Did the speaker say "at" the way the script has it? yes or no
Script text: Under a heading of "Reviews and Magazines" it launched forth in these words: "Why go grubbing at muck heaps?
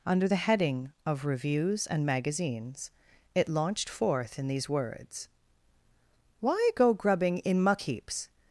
no